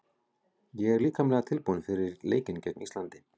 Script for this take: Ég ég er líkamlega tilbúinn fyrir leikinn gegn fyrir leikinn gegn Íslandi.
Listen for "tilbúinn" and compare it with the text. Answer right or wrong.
right